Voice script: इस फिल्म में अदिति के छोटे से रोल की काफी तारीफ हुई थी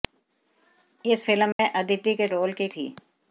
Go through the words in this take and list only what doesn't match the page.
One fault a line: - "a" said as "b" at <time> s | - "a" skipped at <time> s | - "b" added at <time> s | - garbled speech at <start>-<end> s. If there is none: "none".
- "छोटे से" skipped at 2.3 s
- "काफी तारीफ हुई" skipped at 2.7 s